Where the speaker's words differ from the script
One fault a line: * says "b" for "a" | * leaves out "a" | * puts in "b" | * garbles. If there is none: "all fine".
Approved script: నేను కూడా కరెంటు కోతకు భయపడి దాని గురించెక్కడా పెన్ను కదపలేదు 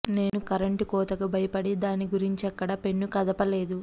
* leaves out "కూడా"